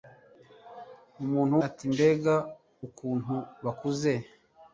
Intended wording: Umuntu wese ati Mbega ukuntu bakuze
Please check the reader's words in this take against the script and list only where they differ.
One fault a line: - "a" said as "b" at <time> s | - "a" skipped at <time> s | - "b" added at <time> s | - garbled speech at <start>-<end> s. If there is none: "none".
- "wese" skipped at 1.6 s